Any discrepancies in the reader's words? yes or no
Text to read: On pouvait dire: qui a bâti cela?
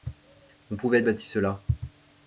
yes